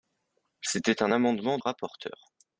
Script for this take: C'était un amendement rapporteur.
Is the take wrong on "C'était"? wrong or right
right